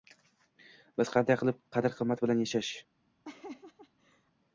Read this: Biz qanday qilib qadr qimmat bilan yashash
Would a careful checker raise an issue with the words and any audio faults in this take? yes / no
yes